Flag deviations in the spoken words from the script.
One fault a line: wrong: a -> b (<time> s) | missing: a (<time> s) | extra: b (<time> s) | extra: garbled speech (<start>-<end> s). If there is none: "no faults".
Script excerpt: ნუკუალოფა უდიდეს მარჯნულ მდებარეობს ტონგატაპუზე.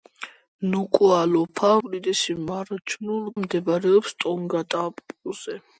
no faults